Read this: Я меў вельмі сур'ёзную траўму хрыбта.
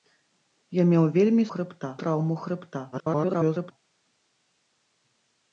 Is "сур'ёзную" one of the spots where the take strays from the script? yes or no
yes